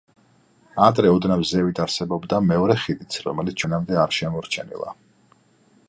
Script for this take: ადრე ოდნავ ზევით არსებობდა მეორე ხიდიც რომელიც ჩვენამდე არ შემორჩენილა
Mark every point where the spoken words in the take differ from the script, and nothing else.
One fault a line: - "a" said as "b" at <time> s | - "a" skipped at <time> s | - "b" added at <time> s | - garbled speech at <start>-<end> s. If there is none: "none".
none